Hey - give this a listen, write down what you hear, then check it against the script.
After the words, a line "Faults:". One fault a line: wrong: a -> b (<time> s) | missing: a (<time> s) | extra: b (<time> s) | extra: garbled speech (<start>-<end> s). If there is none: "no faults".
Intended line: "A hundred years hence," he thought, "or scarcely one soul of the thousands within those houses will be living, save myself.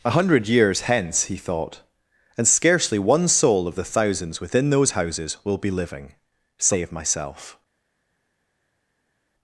"A hundred years hence," he thought, "and scarcely one soul of the thousands within those houses will be living, save myself.
Faults:
wrong: or -> and (2.4 s)